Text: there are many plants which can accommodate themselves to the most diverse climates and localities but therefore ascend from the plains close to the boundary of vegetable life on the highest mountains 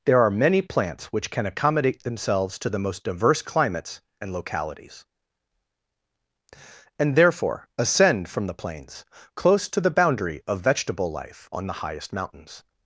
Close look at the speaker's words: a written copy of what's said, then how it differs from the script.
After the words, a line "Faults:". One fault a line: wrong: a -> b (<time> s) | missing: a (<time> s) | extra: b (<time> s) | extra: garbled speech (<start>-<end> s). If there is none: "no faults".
there are many plants which can accommodate themselves to the most diverse climates and localities and therefore ascend from the plains close to the boundary of vegetable life on the highest mountains
Faults:
wrong: but -> and (7.0 s)